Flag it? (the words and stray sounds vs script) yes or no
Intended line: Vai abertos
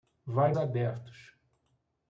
no